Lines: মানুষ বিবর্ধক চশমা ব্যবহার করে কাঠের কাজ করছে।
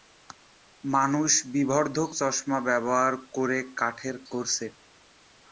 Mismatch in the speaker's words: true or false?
true